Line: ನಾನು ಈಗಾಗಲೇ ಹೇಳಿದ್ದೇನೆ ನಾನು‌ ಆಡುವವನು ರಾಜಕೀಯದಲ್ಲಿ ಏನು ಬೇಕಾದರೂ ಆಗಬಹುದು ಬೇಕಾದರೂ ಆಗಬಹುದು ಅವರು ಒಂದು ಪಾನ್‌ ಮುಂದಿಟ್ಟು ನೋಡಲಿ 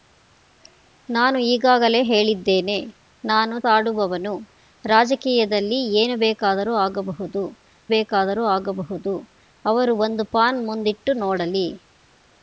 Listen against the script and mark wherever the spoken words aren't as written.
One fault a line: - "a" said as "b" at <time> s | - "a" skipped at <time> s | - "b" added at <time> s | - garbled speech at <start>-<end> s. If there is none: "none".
none